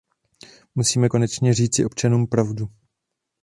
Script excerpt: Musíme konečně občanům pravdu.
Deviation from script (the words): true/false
true